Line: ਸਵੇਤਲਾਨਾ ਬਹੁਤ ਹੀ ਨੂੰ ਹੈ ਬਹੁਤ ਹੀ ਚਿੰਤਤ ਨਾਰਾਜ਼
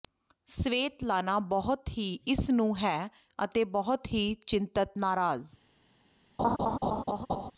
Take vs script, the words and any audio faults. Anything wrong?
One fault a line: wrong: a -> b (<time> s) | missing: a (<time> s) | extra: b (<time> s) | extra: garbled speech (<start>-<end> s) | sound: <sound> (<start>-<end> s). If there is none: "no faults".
extra: ਇਸ (2.3 s)
extra: ਅਤੇ (3.4 s)
sound: laugh (6.4-7.5 s)